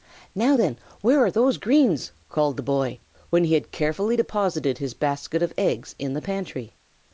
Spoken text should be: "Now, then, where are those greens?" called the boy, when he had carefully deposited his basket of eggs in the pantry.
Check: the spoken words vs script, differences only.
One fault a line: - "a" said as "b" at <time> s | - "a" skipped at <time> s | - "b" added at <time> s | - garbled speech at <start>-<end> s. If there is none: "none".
none